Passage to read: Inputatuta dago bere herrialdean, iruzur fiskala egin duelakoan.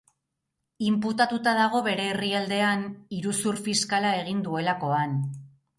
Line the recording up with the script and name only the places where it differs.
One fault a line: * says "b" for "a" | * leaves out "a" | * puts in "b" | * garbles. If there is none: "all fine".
all fine